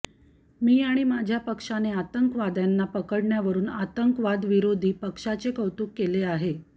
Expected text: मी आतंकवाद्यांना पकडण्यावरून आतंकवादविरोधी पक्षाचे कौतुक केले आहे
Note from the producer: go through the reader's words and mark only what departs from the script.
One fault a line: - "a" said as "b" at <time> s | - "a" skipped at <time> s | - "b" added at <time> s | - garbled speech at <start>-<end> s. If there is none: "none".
- "आणि माझ्या पक्षाने" added at 0.8 s